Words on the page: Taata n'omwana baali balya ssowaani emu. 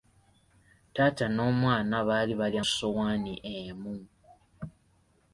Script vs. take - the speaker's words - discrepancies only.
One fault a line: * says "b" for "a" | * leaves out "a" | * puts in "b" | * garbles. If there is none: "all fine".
all fine